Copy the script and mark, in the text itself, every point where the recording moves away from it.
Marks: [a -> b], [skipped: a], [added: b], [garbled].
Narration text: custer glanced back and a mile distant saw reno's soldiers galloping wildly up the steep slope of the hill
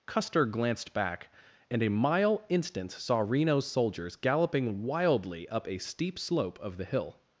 custer glanced back and a mile [distant -> instant] saw reno's soldiers galloping wildly up [the -> a] steep slope of the hill